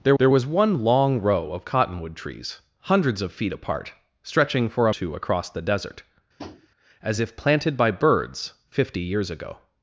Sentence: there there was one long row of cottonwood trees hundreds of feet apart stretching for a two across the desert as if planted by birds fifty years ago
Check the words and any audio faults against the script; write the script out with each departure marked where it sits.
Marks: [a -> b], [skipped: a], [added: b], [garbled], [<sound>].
there there was one long row of cottonwood trees hundreds of feet apart stretching for a two across the desert [tap] as if planted by birds fifty years ago